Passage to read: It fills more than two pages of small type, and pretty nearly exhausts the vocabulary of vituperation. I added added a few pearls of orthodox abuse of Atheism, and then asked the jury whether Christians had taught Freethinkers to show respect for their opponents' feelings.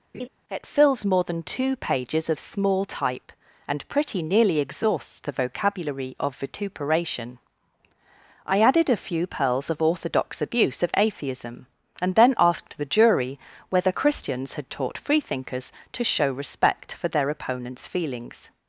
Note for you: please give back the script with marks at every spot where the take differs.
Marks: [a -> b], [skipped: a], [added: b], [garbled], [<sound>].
[laugh] It fills more than two pages of small type, and pretty nearly exhausts the vocabulary of vituperation. I added [skipped: added] a few pearls of orthodox abuse of Atheism, and then asked the jury whether Christians had taught Freethinkers to show respect for their opponents' feelings.